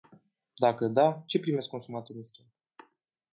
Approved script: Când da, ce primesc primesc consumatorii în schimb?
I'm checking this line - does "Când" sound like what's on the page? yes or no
no